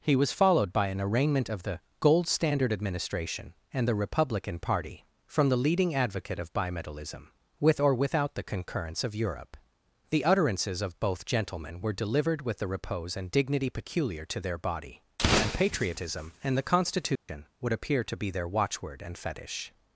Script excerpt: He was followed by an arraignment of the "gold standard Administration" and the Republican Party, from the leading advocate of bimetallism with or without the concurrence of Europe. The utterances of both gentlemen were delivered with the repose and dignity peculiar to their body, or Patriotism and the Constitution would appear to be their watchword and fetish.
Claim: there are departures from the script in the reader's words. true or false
true